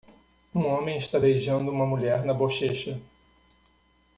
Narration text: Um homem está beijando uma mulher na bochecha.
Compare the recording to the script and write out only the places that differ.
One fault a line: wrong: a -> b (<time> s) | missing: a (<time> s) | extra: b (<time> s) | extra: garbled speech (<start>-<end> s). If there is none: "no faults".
no faults